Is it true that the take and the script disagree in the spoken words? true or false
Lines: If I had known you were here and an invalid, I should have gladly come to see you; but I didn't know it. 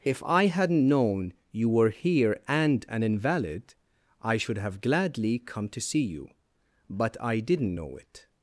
true